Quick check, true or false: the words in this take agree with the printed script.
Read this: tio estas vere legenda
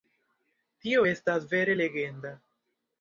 true